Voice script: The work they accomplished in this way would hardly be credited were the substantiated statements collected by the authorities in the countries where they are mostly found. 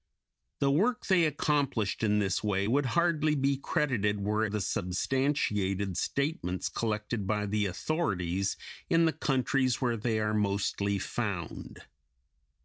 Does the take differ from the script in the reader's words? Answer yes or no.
no